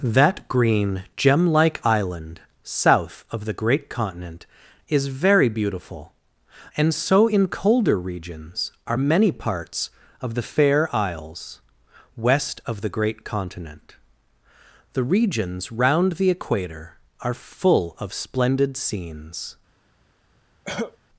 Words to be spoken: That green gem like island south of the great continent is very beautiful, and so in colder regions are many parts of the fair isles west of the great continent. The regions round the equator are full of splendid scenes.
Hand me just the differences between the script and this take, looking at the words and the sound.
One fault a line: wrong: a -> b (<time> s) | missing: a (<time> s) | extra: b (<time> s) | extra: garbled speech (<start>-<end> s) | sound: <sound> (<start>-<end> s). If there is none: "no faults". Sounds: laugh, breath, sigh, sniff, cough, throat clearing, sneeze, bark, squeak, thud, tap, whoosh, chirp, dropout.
sound: cough (20.6-21.0 s)